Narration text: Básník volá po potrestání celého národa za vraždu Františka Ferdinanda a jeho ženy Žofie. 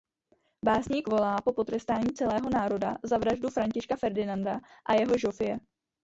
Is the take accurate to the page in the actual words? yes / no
no